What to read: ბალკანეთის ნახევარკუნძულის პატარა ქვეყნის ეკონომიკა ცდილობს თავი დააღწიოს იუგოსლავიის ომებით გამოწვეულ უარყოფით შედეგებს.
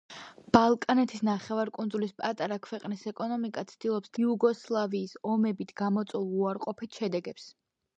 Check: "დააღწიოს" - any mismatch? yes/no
yes